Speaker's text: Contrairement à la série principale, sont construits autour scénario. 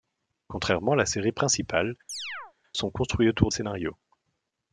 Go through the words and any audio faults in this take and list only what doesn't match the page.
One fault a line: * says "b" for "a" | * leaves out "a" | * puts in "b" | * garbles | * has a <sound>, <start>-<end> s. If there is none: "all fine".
* has a chirp, 2.1-2.5 s